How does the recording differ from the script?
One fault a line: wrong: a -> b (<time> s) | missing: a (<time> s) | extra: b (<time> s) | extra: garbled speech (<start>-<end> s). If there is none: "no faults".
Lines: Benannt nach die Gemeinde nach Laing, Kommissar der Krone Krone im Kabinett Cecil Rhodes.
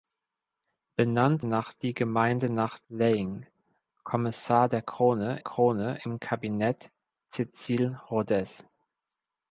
no faults